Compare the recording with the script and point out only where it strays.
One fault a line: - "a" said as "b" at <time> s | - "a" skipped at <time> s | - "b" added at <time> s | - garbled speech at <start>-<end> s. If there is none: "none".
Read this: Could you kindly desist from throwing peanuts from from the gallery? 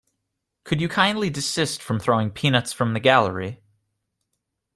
- "from" skipped at 2.9 s